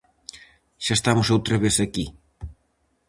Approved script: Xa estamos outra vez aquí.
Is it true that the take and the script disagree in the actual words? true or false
false